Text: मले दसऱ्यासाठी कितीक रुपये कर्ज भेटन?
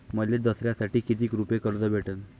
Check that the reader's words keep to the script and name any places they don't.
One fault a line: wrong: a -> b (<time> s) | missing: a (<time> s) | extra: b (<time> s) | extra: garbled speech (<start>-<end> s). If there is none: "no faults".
no faults